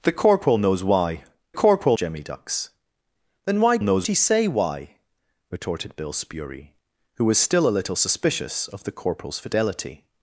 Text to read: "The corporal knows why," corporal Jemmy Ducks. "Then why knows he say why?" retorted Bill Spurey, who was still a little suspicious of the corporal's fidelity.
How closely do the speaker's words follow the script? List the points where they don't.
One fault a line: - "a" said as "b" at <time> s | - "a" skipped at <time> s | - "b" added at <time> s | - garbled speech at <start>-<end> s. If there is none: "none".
none